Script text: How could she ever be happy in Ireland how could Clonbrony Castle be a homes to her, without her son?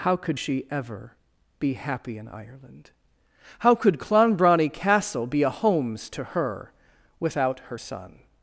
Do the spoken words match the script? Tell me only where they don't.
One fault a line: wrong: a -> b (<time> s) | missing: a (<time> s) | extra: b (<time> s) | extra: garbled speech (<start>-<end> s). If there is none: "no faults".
no faults